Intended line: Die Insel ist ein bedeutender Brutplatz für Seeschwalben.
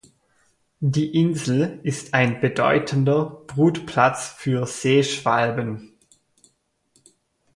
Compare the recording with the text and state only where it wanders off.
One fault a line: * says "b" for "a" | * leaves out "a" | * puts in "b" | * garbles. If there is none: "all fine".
all fine